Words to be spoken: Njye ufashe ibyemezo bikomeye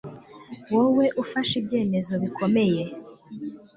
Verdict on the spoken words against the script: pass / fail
fail